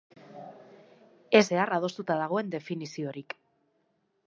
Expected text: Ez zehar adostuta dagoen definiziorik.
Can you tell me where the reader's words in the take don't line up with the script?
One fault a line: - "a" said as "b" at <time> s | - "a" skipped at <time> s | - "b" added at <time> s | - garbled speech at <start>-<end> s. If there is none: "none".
none